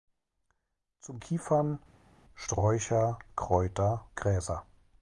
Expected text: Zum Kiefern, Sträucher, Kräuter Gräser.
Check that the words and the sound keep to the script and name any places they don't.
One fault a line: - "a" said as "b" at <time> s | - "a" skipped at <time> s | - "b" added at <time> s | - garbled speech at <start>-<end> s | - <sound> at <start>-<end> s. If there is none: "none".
none